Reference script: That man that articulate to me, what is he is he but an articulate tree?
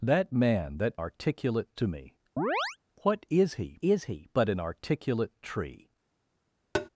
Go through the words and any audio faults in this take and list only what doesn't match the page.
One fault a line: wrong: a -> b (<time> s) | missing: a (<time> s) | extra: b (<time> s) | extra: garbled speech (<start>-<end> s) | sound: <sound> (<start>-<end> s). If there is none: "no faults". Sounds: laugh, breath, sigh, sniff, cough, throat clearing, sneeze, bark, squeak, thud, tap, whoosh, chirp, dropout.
sound: chirp (2.4-2.8 s)
sound: tap (6.7-6.9 s)